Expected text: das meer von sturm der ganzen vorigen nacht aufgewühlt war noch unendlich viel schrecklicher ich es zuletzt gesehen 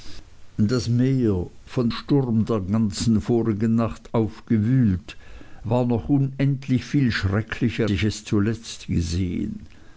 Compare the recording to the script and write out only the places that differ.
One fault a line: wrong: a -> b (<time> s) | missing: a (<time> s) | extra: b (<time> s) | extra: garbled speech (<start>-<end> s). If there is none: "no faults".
no faults